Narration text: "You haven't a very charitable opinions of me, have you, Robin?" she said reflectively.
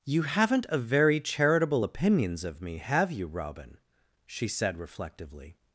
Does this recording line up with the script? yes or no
yes